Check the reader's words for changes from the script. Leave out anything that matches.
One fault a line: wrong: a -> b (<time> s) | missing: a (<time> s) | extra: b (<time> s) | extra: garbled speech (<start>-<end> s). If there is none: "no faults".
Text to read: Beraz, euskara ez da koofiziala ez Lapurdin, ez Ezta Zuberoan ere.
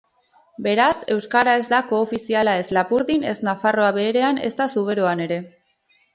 extra: Nafarroa Beherean (3.5 s)